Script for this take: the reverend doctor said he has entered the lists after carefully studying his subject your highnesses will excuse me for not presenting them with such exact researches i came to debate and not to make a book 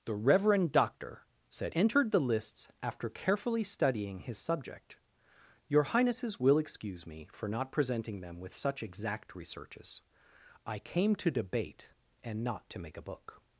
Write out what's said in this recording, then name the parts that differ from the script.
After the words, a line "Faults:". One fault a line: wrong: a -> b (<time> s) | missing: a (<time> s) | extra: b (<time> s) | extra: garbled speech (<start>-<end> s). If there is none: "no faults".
the reverend doctor said entered the lists after carefully studying his subject your highnesses will excuse me for not presenting them with such exact researches i came to debate and not to make a book
Faults:
missing: he has (1.8 s)